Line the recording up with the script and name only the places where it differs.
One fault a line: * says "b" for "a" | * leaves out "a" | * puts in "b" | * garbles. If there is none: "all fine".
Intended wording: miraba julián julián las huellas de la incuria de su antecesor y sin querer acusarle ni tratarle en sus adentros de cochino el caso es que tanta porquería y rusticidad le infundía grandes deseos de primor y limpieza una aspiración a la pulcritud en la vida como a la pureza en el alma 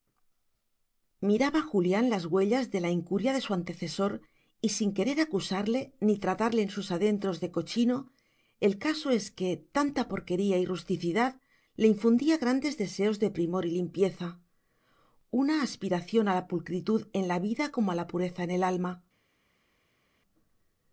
* leaves out "julián"